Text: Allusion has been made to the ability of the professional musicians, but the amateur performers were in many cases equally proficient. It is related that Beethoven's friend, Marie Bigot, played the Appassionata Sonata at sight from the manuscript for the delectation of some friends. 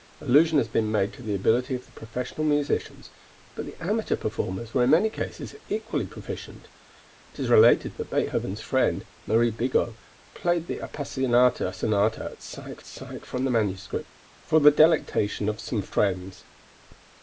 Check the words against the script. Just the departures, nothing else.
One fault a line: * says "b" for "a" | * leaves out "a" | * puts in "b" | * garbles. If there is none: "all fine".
* puts in "sight"